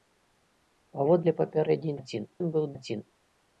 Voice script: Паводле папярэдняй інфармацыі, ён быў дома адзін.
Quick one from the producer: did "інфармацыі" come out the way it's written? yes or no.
no